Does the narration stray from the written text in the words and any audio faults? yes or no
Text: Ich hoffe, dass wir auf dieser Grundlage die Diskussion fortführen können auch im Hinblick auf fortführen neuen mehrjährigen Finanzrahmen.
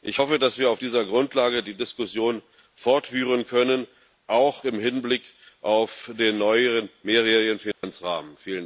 yes